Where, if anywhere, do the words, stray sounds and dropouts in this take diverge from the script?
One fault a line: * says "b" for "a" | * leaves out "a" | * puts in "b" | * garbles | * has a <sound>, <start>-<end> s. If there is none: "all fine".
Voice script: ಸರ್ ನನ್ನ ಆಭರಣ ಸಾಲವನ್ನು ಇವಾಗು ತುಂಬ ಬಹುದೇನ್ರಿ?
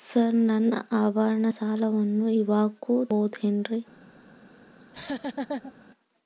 * leaves out "ತುಂಬ"
* has a laugh, 4.8-5.7 s